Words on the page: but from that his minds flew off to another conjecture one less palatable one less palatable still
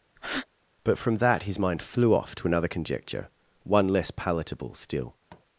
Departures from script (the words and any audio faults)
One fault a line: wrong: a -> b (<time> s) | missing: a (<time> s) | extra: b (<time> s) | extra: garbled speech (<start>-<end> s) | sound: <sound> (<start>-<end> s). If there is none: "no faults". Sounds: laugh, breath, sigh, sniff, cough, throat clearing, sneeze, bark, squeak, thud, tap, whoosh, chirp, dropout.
sound: breath (0.2-0.5 s)
wrong: minds -> mind (1.6 s)
missing: one less palatable (4.7 s)
sound: tap (5.3-5.5 s)